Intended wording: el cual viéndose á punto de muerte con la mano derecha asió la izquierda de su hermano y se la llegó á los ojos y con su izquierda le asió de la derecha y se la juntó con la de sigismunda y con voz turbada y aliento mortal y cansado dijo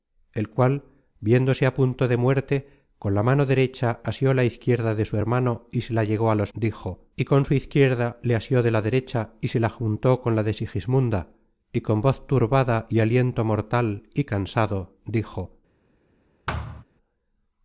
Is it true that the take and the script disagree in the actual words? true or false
true